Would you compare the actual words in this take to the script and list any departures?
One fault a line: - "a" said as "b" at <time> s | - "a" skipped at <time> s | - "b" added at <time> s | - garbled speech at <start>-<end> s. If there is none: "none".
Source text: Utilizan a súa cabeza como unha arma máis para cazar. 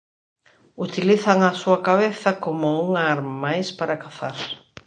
none